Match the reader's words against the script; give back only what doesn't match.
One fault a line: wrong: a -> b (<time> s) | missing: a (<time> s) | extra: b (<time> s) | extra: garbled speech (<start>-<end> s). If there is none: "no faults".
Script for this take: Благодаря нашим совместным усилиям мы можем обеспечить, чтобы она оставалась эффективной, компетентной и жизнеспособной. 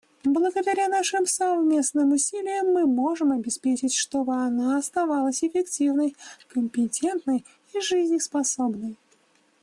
no faults